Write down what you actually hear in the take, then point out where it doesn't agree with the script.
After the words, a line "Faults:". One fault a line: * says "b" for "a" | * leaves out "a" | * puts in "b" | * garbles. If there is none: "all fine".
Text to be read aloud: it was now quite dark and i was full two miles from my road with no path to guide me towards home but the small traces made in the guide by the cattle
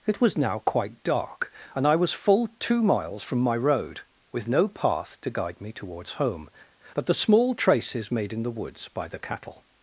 it was now quite dark and i was full two miles from my road with no path to guide me towards home but the small traces made in the woods by the cattle
Faults:
* says "woods" for "guide"